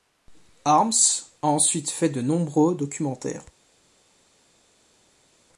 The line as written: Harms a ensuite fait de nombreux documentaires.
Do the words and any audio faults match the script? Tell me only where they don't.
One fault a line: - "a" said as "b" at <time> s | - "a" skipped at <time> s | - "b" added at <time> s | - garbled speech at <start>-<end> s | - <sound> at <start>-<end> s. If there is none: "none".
none